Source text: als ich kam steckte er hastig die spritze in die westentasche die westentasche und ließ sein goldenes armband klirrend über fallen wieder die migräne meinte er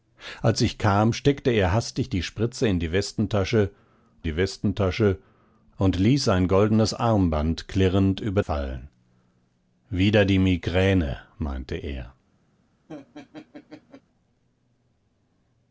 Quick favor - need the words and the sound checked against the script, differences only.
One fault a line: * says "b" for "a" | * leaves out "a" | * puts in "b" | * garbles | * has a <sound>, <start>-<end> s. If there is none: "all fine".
* has a laugh, 12.9-14.0 s